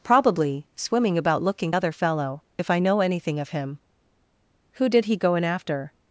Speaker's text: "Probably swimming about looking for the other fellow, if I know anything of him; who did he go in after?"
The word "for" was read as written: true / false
false